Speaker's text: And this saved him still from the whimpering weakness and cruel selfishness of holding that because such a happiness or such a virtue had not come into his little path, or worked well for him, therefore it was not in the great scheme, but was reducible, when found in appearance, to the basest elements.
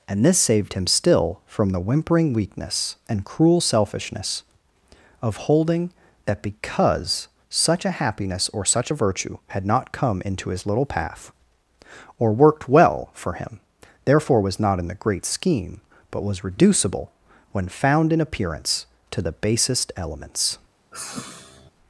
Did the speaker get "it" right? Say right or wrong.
wrong